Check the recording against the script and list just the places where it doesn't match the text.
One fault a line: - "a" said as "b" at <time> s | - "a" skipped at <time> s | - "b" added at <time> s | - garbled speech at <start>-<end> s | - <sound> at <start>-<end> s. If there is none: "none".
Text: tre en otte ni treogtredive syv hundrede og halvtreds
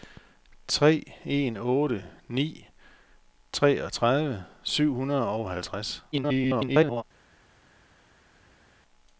- garbled speech at 6.1-7.0 s